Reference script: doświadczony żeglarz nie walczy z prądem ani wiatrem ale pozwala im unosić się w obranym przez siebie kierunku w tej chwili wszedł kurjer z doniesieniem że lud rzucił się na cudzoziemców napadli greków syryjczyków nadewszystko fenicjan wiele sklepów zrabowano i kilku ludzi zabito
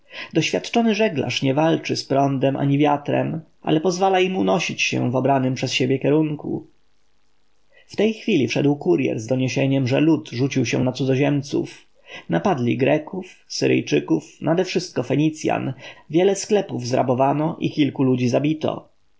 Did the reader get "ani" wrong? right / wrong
right